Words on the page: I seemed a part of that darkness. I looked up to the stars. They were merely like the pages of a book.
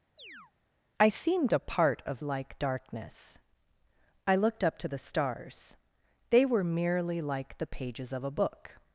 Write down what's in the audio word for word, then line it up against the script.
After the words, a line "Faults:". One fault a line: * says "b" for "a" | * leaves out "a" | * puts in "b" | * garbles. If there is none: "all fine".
I seemed a part of like darkness. I looked up to the stars. They were merely like the pages of a book.
Faults:
* says "like" for "that"